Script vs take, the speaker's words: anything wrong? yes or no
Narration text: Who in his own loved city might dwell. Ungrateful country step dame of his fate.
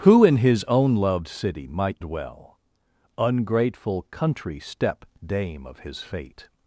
no